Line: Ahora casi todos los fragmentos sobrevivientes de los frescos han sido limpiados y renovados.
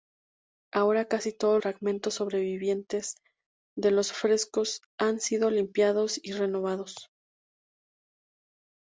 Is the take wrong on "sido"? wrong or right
right